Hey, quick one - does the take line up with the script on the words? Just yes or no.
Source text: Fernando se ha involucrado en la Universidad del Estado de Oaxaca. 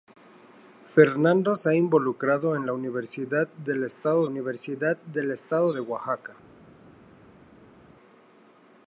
no